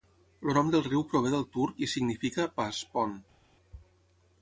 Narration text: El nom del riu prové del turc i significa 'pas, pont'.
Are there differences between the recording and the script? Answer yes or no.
no